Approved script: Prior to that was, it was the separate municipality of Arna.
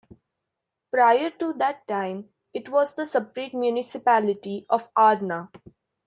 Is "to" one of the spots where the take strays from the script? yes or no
no